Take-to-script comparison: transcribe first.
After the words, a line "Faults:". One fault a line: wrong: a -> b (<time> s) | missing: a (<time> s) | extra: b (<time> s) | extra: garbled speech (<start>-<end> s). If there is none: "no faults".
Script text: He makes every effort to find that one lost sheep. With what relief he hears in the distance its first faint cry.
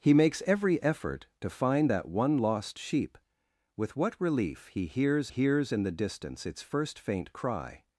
He makes every effort to find that one lost sheep. With what relief he hears hears in the distance its first faint cry.
Faults:
extra: hears (5.3 s)